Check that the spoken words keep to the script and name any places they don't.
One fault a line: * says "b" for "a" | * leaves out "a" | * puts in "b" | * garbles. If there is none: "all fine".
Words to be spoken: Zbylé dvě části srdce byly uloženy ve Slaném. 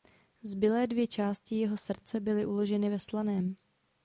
* puts in "jeho"